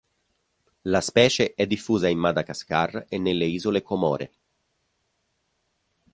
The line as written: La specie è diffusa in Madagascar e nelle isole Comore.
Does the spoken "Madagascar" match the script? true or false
true